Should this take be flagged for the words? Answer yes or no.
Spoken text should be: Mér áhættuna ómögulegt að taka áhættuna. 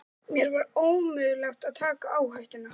yes